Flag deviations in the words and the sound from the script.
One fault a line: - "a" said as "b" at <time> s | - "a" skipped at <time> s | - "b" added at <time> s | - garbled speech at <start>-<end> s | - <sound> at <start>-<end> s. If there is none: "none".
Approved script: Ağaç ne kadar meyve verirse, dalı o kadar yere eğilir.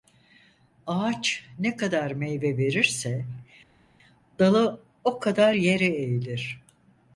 none